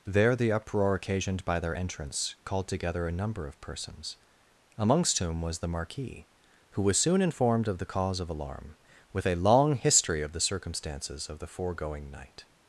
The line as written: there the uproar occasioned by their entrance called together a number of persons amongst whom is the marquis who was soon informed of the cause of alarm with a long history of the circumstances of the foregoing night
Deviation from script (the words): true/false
true